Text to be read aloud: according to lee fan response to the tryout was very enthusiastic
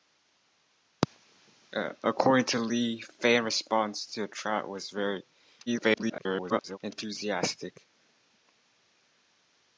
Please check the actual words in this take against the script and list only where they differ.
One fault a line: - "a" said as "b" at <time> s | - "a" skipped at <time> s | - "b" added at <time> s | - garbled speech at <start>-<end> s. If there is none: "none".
- garbled speech at 5.7-6.8 s